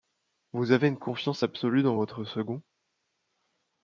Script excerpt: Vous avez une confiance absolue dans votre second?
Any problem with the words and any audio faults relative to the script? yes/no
no